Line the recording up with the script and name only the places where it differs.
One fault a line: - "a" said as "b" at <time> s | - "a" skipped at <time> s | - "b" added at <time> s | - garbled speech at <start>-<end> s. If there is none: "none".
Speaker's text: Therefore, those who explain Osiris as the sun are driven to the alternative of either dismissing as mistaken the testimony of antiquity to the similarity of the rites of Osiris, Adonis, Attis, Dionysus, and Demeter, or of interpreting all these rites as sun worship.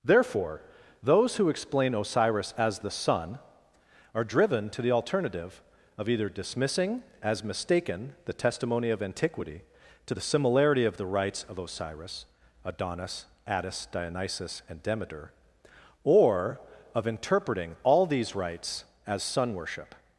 none